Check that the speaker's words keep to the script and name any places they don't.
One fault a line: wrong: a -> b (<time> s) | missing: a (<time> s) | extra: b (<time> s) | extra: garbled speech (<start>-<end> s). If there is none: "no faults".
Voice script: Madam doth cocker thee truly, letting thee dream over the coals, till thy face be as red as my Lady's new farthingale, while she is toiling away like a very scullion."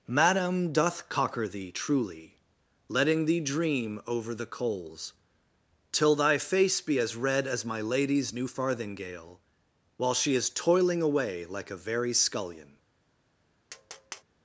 no faults